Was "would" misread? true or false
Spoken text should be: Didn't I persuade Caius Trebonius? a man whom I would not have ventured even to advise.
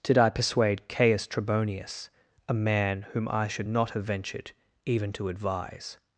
true